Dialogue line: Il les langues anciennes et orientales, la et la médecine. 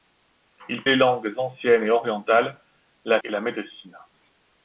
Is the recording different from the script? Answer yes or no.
no